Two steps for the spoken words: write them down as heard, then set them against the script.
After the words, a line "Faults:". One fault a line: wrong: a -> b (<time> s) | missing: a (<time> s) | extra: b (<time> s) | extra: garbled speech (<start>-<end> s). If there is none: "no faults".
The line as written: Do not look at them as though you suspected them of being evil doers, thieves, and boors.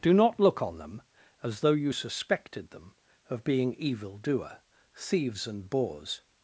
Do not look on them as though you suspected them of being evil doer, thieves, and boors.
Faults:
wrong: at -> on (0.6 s)
wrong: doers -> doer (4.2 s)